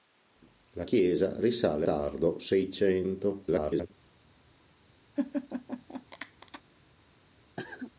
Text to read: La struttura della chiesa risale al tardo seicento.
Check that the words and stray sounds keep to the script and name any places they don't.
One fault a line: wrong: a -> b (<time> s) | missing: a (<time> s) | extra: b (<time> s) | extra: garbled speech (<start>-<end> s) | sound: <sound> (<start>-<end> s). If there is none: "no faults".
missing: struttura della (0.9 s)
missing: al (1.9 s)
extra: garbled speech (3.4-3.9 s)
sound: laugh (5.2-6.6 s)
sound: cough (7.6-7.9 s)